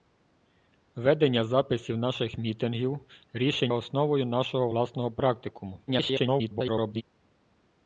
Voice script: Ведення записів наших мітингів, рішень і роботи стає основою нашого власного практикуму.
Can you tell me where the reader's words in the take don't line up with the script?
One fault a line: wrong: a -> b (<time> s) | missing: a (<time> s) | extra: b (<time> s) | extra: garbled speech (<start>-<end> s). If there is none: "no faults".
missing: і роботи стає (3.7 s)
extra: garbled speech (5.9-7.0 s)